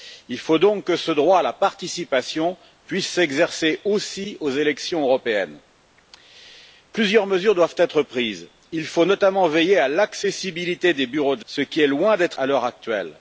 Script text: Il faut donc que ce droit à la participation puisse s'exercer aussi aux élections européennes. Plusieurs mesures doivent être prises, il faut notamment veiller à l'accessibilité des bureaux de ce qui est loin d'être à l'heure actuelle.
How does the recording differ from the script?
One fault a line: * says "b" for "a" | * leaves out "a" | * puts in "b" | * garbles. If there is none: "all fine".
all fine